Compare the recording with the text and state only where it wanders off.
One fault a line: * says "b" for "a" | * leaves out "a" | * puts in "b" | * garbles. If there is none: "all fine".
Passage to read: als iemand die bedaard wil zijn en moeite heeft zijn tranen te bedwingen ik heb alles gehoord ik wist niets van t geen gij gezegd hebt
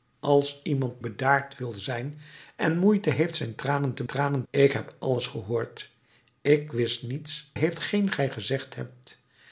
* leaves out "die"
* says "tranen" for "bedwingen"
* says "heeft" for "van"